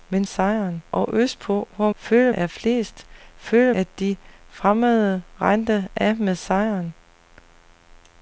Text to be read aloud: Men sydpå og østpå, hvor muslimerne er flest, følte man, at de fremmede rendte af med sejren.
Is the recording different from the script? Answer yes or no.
yes